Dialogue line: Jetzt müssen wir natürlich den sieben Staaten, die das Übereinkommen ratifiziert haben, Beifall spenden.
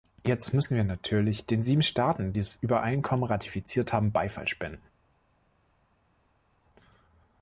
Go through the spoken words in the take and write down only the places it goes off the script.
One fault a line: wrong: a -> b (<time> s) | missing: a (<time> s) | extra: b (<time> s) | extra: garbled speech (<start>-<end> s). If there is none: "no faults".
no faults